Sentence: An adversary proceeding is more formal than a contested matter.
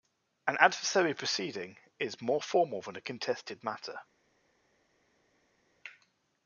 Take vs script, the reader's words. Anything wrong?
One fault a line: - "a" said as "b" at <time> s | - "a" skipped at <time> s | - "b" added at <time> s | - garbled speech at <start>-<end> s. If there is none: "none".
none